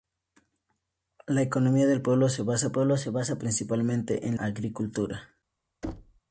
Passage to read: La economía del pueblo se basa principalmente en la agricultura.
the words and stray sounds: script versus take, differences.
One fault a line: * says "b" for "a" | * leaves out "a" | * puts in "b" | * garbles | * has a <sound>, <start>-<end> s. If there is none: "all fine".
* puts in "pueblo se basa"
* leaves out "la"
* has a thud, 5.8-6.2 s